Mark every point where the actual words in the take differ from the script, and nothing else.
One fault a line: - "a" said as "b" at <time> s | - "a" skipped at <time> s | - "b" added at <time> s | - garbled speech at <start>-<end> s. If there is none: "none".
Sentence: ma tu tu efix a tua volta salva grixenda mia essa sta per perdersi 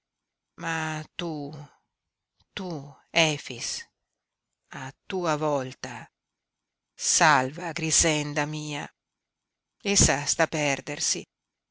- "per" skipped at 10.5 s